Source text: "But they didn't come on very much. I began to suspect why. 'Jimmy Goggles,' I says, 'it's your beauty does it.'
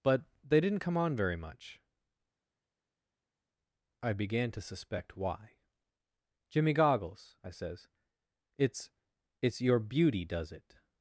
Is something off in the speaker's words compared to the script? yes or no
yes